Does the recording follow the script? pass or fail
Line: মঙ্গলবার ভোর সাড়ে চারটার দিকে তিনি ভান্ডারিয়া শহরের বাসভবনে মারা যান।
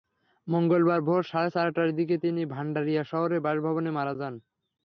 pass